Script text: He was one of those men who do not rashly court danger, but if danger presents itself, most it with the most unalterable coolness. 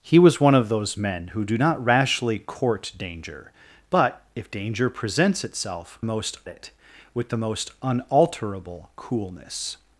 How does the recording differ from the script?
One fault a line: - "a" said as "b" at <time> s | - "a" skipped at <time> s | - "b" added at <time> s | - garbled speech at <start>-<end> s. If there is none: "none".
none